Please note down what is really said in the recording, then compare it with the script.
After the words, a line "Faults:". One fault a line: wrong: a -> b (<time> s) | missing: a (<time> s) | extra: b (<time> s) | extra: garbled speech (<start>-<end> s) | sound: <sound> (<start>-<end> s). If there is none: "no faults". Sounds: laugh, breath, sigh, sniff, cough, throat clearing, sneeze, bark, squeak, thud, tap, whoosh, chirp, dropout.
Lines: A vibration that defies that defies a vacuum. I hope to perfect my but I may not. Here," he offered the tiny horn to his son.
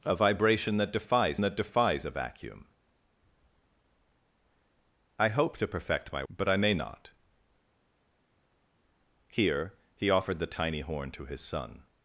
A vibration that defies that defies a vacuum. I hope to perfect my but I may not. Here," he offered the tiny horn to his son.
Faults:
no faults